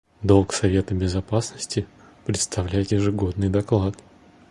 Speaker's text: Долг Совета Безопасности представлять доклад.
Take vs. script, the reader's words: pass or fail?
fail